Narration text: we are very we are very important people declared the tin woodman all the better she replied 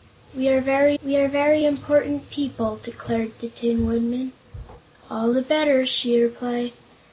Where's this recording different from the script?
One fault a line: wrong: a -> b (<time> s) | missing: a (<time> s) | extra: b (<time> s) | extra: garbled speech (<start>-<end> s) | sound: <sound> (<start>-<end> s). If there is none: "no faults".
no faults